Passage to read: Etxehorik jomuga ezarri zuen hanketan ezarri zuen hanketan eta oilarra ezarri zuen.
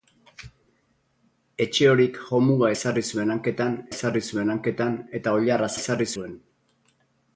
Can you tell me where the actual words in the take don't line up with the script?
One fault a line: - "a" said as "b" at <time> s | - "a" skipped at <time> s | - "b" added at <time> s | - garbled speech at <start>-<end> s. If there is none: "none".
none